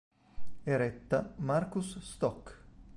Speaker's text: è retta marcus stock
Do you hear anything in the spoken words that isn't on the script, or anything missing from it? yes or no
no